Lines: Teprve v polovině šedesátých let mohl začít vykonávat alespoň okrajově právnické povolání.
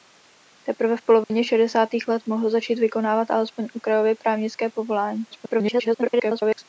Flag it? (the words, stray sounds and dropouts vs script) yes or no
yes